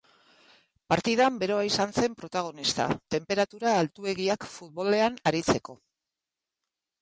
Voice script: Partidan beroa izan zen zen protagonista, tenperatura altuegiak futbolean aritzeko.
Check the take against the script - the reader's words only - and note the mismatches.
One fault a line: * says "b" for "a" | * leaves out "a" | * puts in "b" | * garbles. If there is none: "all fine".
* leaves out "zen"